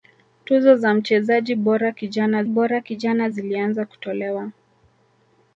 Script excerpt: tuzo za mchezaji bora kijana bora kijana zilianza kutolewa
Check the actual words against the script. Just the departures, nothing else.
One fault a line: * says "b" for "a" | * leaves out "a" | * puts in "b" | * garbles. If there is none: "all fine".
all fine